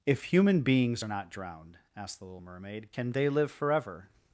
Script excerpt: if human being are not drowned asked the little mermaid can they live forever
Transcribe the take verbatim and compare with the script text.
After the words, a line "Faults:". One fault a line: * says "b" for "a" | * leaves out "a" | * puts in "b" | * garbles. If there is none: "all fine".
if human beings are not drowned asked the little mermaid can they live forever
Faults:
* says "beings" for "being"